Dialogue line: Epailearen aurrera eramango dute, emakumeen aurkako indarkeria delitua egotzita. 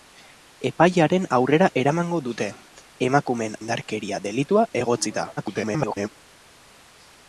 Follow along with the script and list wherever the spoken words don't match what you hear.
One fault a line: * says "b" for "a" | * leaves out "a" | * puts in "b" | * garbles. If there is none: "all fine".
* leaves out "aurkako"
* garbles